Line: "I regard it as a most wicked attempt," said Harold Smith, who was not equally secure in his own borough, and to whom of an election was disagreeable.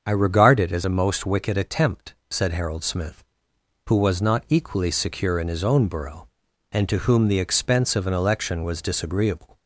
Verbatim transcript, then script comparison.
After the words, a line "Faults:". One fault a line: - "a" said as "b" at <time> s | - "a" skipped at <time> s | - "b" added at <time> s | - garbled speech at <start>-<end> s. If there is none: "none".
"I regard it as a most wicked attempt," said Harold Smith, who was not equally secure in his own borough, and to whom the expense of an election was disagreeable.
Faults:
- "the expense" added at 7.3 s